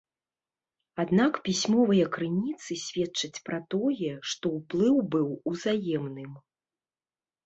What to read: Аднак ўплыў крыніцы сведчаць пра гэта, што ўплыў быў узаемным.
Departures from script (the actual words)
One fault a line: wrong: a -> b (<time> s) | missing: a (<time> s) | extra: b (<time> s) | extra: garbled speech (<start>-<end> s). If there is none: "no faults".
wrong: ўплыў -> пісьмовыя (1.5 s)
wrong: гэта -> тое (3.7 s)